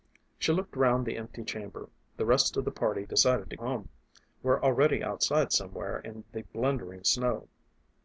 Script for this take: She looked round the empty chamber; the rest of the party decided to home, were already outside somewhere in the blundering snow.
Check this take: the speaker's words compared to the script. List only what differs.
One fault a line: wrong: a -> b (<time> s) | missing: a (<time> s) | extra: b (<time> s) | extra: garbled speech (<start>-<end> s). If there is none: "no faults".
no faults